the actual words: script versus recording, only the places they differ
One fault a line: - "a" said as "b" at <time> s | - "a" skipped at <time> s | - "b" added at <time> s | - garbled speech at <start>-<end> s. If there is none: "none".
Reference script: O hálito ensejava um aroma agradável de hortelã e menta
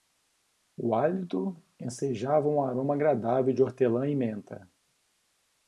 none